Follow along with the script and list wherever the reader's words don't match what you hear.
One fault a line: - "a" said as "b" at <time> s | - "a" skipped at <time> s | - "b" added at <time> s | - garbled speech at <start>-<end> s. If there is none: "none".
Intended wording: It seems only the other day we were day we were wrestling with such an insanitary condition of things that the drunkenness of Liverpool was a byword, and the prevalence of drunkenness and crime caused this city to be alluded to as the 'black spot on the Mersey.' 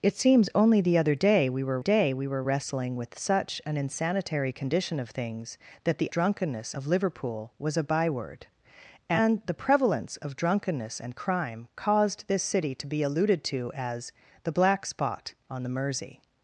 none